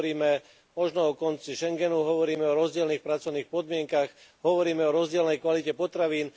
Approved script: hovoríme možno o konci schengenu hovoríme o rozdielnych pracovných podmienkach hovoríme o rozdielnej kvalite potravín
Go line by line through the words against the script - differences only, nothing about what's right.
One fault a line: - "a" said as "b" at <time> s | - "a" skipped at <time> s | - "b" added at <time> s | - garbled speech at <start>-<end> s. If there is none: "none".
none